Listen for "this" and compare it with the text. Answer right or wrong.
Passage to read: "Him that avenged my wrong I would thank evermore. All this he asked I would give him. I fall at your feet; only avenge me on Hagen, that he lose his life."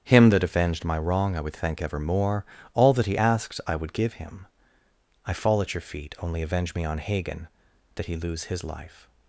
wrong